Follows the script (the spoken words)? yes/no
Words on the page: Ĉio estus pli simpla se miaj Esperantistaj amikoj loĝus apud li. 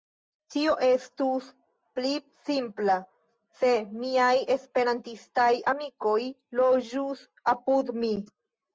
no